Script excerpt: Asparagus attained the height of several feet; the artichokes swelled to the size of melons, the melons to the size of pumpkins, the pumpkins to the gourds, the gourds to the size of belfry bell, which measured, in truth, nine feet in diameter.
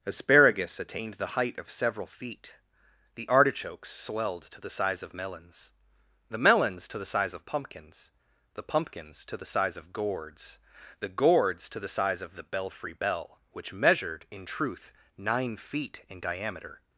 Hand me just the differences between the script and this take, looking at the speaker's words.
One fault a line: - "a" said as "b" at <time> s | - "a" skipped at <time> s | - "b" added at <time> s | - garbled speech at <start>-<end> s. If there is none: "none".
- "size of" added at 9.4 s
- "the" added at 12.3 s